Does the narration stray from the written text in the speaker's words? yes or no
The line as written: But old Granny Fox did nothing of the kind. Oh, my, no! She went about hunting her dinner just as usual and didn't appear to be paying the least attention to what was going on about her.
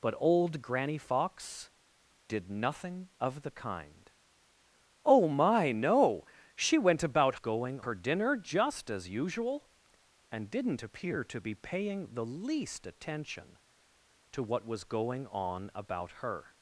yes